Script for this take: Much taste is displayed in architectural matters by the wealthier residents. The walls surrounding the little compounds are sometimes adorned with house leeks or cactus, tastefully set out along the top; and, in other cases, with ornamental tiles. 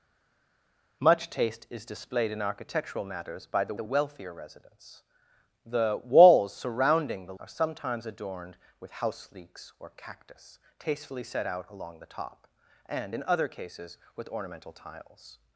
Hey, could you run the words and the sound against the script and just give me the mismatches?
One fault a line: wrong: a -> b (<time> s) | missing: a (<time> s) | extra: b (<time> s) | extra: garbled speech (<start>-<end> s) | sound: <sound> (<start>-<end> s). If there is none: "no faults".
extra: the (3.7 s)
missing: little compounds (7.3 s)